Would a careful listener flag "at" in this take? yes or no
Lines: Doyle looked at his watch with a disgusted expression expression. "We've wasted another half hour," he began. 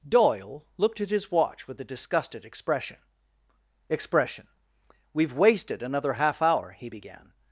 no